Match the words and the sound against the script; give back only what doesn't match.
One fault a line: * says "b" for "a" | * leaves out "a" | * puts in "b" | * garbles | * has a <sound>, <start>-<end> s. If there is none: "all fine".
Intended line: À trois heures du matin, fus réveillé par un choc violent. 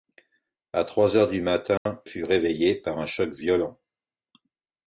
* has a dropout, 1.8-1.9 s